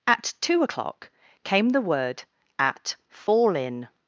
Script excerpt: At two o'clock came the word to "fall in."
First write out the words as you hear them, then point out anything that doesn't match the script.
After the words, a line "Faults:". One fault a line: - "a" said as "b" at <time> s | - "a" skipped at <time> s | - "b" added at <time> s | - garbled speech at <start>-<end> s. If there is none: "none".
At two o'clock came the word at "fall in."
Faults:
- "to" said as "at" at 2.6 s